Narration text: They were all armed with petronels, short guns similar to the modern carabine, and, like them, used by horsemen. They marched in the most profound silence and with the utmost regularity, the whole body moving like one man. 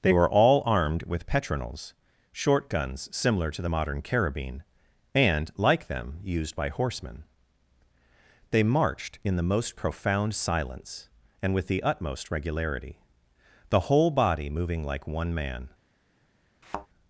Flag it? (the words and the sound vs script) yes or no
yes